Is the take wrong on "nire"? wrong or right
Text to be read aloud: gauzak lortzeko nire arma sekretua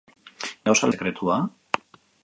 wrong